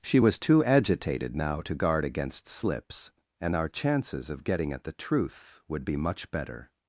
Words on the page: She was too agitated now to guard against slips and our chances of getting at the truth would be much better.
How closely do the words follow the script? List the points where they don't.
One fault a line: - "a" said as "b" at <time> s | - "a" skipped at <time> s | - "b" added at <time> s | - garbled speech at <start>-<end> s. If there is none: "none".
none